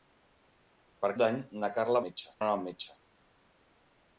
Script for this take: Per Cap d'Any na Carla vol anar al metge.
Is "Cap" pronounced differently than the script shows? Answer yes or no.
yes